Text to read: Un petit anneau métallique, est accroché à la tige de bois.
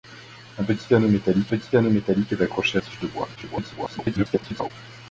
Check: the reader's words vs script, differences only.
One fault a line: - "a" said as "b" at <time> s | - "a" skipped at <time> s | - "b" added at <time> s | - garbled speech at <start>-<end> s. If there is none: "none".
- "petit anneau métallique" added at 1.5 s
- "la" skipped at 2.8 s
- garbled speech at 3.4-4.7 s